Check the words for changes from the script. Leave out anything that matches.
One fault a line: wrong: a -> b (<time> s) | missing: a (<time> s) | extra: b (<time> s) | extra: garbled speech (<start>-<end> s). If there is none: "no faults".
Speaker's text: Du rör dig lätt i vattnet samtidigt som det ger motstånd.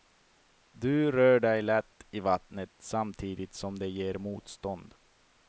no faults